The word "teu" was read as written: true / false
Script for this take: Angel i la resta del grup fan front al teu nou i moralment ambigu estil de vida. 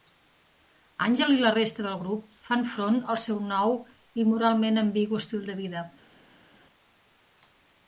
false